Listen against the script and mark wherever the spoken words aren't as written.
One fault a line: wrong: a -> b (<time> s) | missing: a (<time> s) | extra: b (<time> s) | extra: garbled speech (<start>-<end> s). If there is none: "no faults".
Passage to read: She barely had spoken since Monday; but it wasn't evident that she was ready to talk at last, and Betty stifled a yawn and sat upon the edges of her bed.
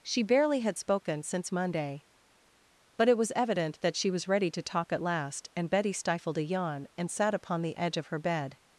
wrong: wasn't -> was (3.2 s)
wrong: edges -> edge (7.8 s)